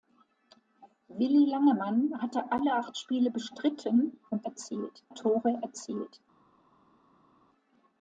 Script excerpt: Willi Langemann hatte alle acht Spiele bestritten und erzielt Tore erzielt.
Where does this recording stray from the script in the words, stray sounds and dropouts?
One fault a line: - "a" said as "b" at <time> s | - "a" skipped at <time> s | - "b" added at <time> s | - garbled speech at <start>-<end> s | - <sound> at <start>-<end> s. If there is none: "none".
none